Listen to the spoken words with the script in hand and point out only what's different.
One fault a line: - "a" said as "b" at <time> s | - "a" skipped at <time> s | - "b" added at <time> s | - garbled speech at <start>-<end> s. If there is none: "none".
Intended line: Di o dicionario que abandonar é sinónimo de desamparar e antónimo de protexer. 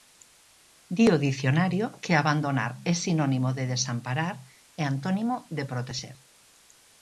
none